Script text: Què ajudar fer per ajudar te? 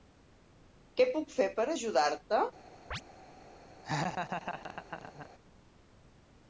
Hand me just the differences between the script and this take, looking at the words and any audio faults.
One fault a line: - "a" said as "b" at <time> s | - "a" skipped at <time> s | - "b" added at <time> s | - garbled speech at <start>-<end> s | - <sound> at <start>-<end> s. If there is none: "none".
- "ajudar" said as "puc" at 1.2 s
- chirp at 2.9-3.0 s
- laugh at 3.8-5.3 s